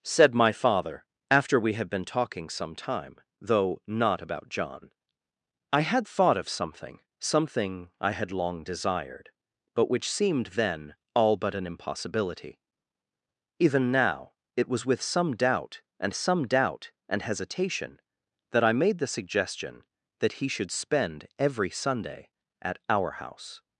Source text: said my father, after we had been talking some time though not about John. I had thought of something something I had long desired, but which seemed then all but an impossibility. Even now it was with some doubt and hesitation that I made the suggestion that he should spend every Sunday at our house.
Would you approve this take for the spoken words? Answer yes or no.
no